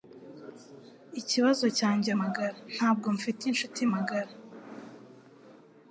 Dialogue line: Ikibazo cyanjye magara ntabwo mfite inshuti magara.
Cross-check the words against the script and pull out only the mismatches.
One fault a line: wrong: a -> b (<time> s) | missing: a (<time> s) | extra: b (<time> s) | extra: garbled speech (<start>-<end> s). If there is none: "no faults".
no faults